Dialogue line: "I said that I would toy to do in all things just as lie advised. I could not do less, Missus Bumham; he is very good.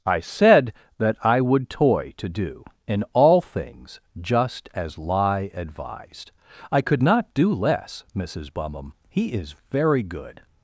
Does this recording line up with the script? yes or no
yes